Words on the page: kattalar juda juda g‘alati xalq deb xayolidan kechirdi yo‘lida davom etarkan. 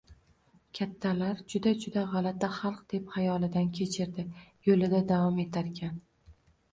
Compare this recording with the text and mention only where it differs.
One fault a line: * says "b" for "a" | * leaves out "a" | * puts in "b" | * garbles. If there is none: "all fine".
all fine